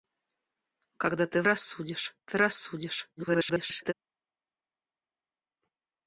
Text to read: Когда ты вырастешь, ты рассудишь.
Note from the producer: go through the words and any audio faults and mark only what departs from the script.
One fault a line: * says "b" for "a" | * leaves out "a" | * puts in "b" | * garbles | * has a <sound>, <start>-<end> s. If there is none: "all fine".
* says "рассудишь" for "вырастешь"
* garbles